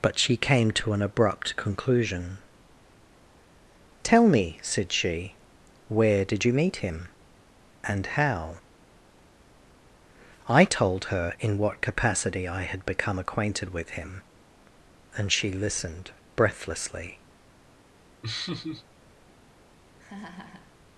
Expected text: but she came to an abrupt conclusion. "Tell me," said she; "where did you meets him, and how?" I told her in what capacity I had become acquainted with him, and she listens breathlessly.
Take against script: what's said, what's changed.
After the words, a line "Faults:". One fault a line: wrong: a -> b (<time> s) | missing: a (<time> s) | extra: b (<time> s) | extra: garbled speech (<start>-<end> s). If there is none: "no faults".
but she came to an abrupt conclusion. "Tell me," said she; "where did you meet him, and how?" I told her in what capacity I had become acquainted with him, and she listened breathlessly.
Faults:
wrong: meets -> meet (6.5 s)
wrong: listens -> listened (15.5 s)